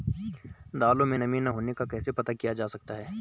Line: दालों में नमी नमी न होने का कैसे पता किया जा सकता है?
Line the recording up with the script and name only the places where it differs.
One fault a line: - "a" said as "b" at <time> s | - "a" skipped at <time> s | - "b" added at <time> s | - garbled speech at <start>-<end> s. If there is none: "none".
- "नमी" skipped at 1.4 s